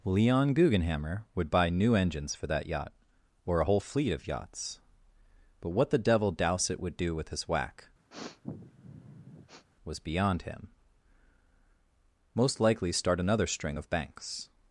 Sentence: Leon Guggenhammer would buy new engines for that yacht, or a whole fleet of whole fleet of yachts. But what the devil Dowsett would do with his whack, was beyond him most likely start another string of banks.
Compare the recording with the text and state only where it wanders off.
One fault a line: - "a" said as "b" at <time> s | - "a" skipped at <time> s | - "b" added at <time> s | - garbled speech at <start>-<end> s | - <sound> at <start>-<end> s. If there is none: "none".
- "whole fleet of" skipped at 4.3 s
- sniff at 8.1-9.7 s